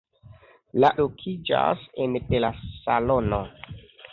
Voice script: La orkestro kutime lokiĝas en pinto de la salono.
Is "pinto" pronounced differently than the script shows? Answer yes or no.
yes